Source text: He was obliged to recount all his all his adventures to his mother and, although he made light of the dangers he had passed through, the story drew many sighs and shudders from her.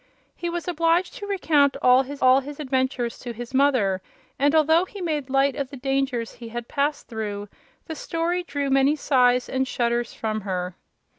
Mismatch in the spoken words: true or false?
false